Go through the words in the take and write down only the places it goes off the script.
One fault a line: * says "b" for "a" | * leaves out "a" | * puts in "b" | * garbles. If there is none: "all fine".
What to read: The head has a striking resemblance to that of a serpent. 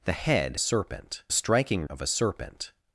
* says "serpent" for "has"
* leaves out "resemblance to that"